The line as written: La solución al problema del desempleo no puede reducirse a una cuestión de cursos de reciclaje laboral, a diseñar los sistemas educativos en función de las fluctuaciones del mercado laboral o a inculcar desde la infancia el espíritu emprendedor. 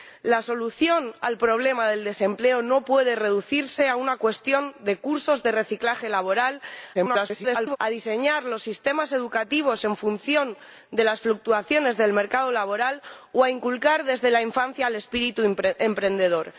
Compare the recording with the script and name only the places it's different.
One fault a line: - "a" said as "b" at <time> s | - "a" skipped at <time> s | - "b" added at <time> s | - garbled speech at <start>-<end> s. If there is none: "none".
- garbled speech at 6.9-7.8 s